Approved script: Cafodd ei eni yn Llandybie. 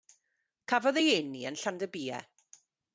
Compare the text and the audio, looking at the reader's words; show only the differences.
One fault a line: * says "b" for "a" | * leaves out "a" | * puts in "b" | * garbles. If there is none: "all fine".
all fine